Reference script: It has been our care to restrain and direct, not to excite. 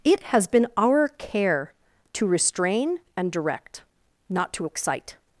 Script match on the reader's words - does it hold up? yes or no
yes